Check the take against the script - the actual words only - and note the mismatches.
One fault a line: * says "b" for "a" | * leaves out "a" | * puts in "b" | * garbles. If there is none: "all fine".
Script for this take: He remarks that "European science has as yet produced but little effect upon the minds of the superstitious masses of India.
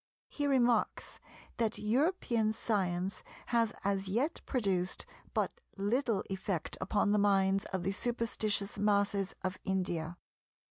all fine